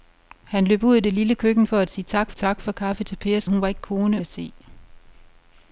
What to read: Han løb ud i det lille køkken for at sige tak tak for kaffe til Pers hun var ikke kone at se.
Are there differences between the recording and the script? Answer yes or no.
no